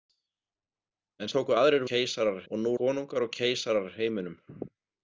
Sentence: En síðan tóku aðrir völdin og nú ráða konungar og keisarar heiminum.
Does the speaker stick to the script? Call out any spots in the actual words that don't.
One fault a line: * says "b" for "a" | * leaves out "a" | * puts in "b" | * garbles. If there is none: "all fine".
* leaves out "síðan"
* says "keisarar" for "völdin"
* leaves out "ráða"